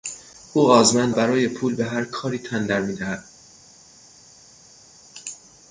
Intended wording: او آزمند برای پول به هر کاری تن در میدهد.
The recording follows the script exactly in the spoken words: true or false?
true